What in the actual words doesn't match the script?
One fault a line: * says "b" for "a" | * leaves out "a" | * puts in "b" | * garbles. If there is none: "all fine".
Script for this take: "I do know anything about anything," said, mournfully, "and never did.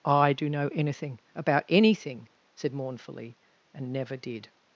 all fine